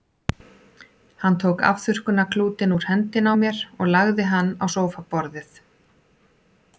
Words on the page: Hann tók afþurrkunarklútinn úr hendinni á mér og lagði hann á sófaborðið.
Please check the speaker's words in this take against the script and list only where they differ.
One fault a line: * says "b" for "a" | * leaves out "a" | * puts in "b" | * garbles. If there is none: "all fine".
all fine